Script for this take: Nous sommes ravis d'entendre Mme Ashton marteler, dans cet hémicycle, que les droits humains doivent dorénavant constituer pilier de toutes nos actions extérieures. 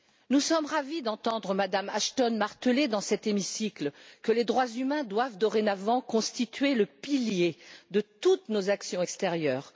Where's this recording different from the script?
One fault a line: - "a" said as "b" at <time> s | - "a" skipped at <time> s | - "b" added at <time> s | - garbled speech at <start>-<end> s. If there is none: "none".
- "le" added at 6.7 s